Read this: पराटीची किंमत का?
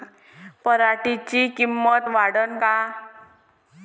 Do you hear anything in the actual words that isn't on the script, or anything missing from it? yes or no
yes